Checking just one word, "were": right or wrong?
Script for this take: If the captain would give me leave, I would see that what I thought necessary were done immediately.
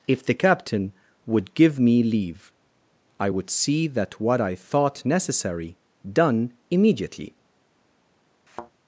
wrong